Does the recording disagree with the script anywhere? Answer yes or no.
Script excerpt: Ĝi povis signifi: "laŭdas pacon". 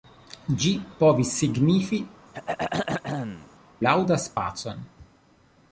no